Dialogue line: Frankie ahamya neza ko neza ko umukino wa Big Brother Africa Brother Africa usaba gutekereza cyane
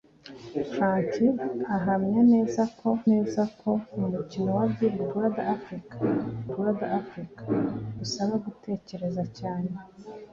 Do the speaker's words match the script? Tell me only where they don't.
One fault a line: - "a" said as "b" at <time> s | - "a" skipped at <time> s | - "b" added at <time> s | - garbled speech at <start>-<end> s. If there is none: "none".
none